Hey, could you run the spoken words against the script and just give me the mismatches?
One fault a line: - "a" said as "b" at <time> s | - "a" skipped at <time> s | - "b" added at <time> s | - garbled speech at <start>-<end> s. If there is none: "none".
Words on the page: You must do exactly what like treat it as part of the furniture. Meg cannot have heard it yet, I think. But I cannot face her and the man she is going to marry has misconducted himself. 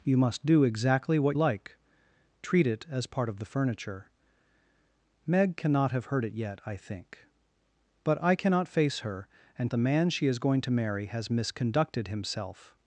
none